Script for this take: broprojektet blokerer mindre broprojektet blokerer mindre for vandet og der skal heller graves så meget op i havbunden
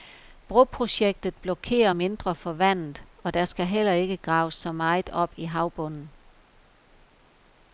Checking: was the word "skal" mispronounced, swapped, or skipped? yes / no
no